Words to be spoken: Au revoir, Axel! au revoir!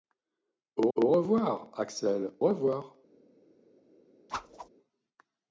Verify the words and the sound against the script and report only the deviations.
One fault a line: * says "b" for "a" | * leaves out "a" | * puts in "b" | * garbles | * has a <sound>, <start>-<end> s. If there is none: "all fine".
* puts in "au"
* leaves out "au"
* has a whoosh, 4.3-4.7 s